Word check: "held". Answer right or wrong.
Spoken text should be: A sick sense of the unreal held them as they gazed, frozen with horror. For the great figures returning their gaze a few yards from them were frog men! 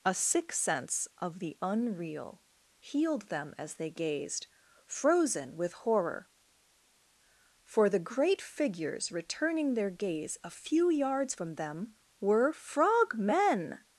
wrong